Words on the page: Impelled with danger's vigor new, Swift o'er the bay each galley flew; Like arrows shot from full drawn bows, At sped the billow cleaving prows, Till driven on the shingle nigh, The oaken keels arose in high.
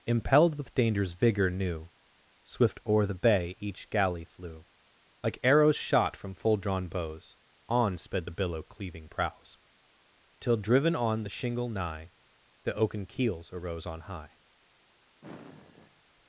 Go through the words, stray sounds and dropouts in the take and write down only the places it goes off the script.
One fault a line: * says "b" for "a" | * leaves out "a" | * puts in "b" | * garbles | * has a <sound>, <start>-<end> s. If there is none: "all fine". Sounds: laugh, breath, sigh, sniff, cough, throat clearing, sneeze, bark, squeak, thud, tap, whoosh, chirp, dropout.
* says "On" for "At"
* says "on" for "in"
* has a sigh, 15.2-16.0 s